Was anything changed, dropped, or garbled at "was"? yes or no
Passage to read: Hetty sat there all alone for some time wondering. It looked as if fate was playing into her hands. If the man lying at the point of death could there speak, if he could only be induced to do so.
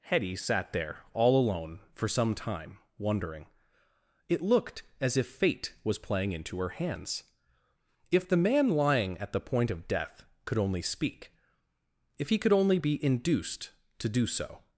no